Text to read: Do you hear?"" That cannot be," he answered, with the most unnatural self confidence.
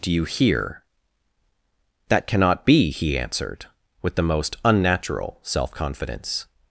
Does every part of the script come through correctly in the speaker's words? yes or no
yes